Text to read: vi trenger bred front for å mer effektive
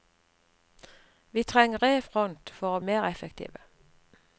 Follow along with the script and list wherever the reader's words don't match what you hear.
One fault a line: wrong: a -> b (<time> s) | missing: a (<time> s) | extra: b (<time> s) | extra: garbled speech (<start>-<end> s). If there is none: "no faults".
no faults